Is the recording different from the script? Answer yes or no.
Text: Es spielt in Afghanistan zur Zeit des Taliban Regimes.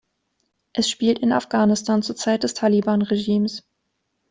no